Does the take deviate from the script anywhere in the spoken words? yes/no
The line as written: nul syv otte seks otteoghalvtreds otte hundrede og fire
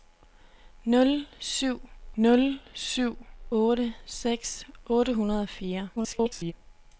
yes